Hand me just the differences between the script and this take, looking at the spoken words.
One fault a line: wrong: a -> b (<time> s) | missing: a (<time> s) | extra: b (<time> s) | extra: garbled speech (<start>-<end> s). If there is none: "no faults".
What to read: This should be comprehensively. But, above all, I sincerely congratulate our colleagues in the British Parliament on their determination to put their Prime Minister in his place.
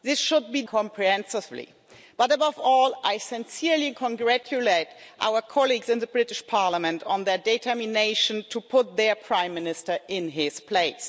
no faults